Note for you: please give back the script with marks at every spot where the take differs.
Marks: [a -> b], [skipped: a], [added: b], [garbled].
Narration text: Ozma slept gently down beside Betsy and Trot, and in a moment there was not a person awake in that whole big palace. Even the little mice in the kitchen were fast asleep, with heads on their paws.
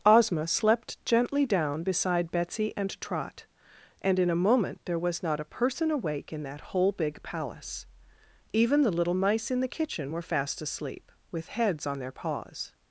Ozma slept gently down beside Betsy and Trot, and in a moment there was not a person awake in that whole big palace. Even the little mice in the kitchen were fast asleep, with heads on their paws.